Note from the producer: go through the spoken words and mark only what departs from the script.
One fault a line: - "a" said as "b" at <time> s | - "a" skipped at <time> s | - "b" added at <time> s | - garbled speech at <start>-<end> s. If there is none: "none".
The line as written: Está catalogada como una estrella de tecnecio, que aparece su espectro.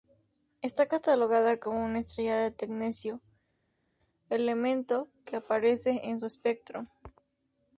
- "elemento" added at 4.3 s
- "en" added at 6.1 s